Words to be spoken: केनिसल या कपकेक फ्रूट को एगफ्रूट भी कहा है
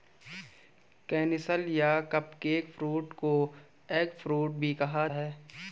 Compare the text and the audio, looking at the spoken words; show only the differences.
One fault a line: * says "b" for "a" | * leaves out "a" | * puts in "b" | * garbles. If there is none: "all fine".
all fine